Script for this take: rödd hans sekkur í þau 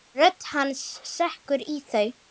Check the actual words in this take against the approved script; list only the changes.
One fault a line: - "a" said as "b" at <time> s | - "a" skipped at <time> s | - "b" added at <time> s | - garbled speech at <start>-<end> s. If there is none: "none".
none